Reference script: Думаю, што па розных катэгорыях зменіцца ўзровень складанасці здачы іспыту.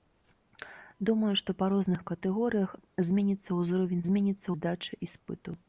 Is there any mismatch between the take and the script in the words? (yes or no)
yes